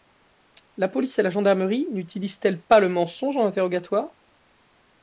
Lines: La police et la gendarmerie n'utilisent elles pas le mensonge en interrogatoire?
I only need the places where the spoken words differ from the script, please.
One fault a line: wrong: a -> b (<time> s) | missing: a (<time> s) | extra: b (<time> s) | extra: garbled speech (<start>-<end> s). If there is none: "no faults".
no faults